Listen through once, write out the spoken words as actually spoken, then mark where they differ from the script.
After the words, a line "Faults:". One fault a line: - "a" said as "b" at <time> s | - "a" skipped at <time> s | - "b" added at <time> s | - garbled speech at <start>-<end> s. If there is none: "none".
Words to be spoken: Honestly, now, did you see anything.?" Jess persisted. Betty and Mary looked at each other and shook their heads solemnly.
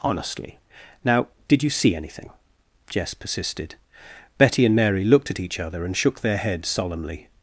Honestly, now, did you see anything.?" Jess persisted. Betty and Mary looked at each other and shook their heads solemnly.
Faults:
none